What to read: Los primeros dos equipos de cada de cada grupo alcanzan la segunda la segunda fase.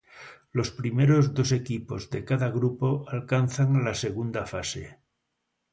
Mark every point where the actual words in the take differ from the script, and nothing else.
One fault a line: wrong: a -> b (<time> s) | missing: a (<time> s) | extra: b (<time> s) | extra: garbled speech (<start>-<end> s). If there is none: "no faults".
missing: de cada (2.5 s)
missing: la segunda (4.5 s)